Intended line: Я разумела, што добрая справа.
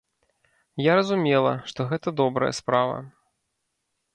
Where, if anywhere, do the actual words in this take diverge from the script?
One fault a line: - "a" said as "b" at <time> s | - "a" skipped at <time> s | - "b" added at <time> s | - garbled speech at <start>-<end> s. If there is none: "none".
- "гэта" added at 1.9 s